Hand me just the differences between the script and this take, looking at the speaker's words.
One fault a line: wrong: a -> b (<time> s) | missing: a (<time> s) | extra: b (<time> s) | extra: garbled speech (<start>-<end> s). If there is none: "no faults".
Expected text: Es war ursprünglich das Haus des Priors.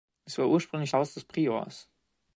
missing: das (0.9 s)